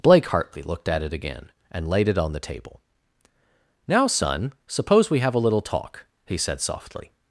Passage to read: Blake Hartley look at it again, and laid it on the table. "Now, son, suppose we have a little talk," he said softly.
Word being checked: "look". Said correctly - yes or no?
no